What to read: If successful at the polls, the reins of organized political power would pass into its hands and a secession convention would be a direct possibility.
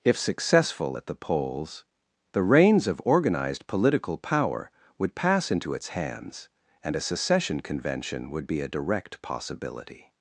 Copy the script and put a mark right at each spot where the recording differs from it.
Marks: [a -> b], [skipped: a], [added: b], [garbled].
If successful at the polls, the reins of organized political power would pass into its hands and a secession convention would be a direct possibility.